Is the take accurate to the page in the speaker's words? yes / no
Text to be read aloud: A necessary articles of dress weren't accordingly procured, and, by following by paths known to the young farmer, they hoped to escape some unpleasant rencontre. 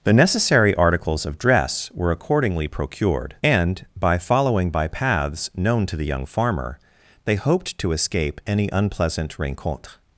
no